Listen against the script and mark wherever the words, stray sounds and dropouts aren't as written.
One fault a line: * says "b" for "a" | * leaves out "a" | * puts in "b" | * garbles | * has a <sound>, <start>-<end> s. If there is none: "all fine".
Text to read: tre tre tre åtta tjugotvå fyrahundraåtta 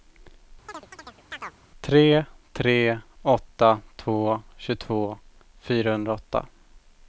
* has a chirp, 0.7-1.6 s
* says "åtta två" for "tre åtta"